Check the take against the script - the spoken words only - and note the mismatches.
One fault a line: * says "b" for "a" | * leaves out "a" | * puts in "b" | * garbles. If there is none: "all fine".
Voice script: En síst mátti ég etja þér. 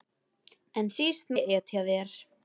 * leaves out "mátti"